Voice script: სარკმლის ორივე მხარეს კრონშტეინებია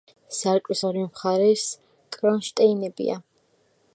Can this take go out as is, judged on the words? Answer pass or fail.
pass